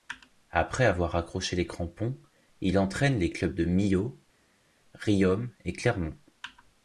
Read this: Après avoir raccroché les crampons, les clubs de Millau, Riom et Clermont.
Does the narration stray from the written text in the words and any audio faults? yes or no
yes